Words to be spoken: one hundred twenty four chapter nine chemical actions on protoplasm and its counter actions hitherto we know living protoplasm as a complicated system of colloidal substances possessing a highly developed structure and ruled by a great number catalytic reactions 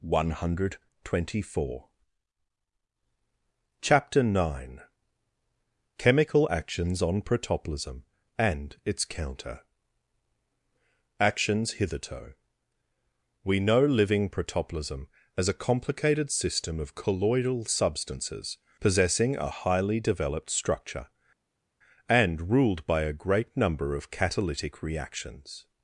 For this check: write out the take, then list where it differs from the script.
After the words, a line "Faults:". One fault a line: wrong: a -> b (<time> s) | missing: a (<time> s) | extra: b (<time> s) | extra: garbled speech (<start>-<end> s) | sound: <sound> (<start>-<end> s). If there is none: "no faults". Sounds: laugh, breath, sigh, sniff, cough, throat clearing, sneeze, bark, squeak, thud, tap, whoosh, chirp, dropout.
one hundred twenty four chapter nine chemical actions on protoplasm and its counter actions hitherto we know living protoplasm as a complicated system of colloidal substances possessing a highly developed structure and ruled by a great number of catalytic reactions
Faults:
extra: of (23.9 s)